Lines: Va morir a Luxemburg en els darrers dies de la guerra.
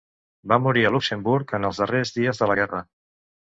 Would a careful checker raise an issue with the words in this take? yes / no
no